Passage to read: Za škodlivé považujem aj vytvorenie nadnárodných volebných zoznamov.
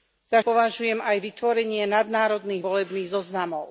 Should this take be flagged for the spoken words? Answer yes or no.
yes